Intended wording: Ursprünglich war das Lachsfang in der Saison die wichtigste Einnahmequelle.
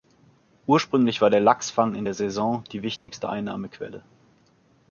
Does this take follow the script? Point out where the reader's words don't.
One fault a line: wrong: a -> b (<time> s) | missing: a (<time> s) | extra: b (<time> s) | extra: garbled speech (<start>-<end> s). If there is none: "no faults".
wrong: das -> der (1.3 s)